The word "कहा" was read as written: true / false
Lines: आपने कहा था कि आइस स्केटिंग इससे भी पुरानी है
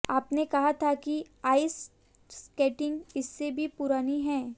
true